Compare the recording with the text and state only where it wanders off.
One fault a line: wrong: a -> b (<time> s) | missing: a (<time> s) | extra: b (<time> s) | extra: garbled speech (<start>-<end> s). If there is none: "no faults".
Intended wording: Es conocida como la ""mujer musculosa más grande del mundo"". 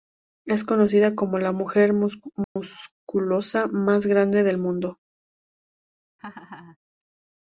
no faults